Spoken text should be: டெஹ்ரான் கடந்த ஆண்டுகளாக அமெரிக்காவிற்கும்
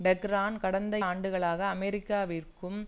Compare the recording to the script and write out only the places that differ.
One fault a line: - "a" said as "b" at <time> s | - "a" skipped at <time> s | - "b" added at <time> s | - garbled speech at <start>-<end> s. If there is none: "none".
none